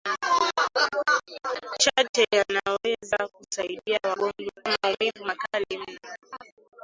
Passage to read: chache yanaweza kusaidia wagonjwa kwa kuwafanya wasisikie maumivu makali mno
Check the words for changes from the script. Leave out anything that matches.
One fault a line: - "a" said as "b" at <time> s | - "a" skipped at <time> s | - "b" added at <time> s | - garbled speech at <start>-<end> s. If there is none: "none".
- "kwa kuwafanya wasisikie" skipped at 4.6 s